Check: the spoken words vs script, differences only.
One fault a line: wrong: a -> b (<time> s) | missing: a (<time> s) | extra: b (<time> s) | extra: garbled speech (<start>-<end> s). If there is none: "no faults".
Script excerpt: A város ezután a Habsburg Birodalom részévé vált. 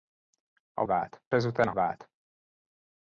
wrong: város -> vált (0.8 s)
missing: Habsburg Birodalom részévé (1.7 s)